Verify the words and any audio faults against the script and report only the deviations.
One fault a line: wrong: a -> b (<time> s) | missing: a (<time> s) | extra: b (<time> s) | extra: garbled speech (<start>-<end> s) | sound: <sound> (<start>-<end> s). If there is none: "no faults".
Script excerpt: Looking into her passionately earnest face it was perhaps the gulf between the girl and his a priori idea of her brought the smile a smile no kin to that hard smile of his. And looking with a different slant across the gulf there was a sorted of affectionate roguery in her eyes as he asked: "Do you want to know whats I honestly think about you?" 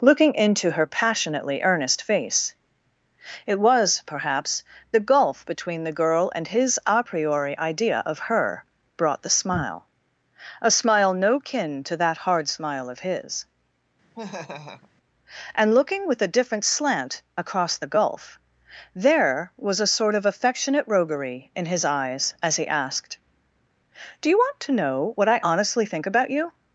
sound: laugh (14.1-14.9 s)
wrong: sorted -> sort (20.0 s)
wrong: her -> his (21.7 s)
wrong: whats -> what (25.1 s)